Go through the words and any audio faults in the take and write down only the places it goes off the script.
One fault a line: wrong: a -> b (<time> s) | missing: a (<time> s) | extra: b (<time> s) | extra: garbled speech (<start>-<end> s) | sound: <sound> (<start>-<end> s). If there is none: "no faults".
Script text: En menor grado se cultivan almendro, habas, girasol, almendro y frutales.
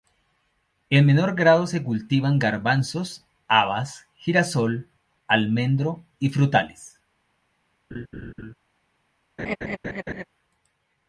wrong: almendro -> garbanzos (2.4 s)
sound: laugh (7.9-8.5 s)
sound: laugh (9.4-10.2 s)